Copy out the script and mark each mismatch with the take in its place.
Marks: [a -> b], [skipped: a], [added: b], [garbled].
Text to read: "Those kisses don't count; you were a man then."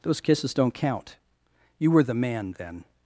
"Those kisses don't count; you were [a -> the] man then."